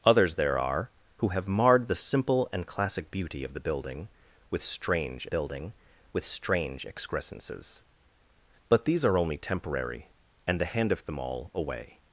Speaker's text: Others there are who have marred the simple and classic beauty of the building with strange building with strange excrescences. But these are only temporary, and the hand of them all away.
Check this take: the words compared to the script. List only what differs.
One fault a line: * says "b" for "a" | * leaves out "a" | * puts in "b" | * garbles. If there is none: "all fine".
all fine